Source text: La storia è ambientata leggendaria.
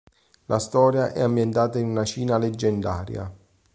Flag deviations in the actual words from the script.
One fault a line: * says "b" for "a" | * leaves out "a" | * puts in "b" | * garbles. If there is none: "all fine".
* puts in "in una Cina"